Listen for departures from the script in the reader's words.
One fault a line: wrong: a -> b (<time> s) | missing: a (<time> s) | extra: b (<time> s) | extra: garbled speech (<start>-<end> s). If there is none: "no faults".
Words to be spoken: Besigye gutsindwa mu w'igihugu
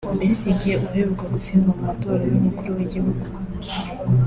extra: uheruka (0.8 s)
extra: matora y'umukuru (1.9 s)